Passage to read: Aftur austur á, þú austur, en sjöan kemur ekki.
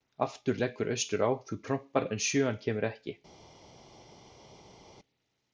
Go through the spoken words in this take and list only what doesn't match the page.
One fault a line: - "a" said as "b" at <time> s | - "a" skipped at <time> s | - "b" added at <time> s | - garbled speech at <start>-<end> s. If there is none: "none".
- "leggur" added at 0.6 s
- "austur" said as "trompar" at 1.7 s